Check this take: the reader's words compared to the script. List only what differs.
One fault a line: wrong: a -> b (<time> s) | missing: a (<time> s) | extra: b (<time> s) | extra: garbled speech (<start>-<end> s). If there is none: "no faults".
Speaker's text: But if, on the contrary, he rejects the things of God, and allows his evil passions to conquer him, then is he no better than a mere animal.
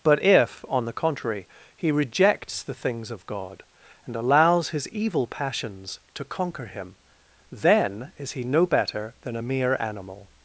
no faults